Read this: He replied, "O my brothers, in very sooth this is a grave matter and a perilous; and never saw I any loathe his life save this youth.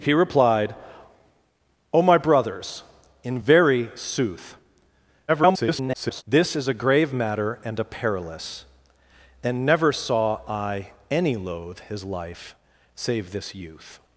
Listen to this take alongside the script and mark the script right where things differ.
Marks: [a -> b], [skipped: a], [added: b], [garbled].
He replied, "O my brothers, in very sooth [garbled] this is a grave matter and a perilous; and never saw I any loathe his life save this youth.